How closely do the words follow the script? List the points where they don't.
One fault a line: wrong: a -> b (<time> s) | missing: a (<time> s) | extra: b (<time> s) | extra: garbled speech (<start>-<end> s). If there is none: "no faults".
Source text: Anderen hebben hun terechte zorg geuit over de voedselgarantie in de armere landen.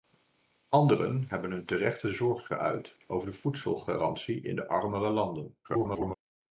extra: garbled speech (5.6-6.1 s)